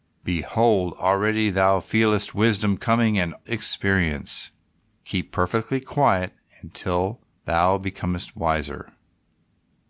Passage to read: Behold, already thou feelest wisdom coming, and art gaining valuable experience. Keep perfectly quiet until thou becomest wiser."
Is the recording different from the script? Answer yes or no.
yes